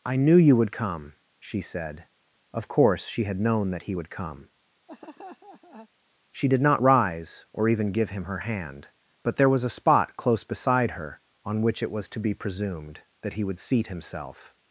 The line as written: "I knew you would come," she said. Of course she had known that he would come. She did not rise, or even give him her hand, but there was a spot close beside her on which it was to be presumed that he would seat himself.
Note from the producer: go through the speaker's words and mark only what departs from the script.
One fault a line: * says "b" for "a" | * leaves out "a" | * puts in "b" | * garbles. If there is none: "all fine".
all fine